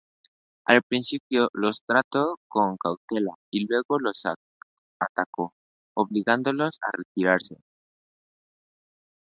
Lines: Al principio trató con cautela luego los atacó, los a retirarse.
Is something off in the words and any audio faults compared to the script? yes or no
yes